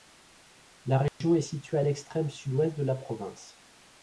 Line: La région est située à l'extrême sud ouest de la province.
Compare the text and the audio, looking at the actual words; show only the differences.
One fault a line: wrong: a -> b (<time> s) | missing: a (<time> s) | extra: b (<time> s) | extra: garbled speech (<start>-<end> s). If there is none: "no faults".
no faults